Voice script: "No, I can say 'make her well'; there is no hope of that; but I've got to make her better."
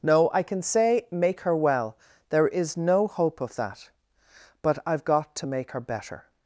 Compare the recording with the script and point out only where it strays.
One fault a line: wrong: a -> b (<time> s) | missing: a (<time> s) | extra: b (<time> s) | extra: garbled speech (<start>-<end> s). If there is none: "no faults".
no faults